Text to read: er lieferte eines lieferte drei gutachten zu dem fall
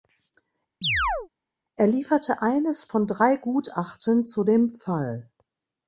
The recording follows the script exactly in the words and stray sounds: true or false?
false